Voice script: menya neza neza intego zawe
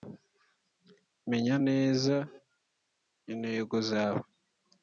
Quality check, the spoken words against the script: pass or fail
fail